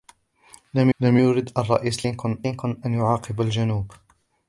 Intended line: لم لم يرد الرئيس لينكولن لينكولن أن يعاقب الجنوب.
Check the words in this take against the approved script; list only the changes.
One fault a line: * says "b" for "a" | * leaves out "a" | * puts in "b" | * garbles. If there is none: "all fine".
all fine